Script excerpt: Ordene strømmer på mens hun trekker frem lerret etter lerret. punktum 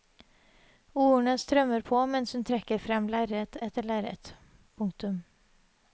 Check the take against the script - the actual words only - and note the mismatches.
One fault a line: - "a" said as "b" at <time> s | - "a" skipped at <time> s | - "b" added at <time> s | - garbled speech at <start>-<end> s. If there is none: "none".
none